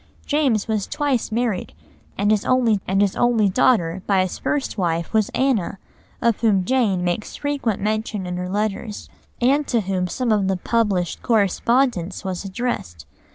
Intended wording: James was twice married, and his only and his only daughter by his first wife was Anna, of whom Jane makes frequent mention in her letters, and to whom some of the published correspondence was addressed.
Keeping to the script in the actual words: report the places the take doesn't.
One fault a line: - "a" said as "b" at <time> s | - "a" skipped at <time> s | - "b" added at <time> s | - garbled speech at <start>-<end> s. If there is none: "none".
none